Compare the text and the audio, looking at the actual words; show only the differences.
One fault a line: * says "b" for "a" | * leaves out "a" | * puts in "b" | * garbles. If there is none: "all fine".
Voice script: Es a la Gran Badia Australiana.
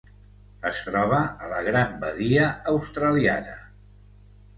* puts in "troba"